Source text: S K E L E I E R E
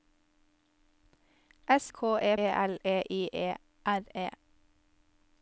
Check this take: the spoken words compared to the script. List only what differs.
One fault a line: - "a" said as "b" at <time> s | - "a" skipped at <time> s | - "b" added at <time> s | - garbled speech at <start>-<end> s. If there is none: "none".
none